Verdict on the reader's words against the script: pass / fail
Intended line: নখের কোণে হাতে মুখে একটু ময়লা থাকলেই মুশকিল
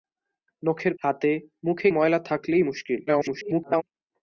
fail